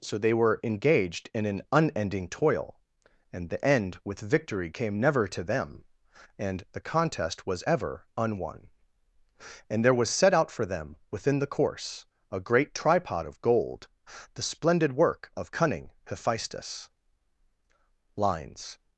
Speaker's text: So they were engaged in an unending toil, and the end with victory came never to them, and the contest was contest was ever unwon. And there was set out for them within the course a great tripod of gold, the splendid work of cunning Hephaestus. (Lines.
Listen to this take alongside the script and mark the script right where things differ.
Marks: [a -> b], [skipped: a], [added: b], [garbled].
So they were engaged in an unending toil, and the end with victory came never to them, and the contest was [skipped: contest was] ever unwon. And there was set out for them within the course a great tripod of gold, the splendid work of cunning Hephaestus. (Lines.